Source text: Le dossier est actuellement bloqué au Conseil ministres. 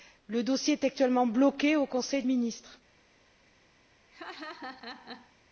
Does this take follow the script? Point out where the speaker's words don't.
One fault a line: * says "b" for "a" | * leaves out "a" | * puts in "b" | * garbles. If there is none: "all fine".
all fine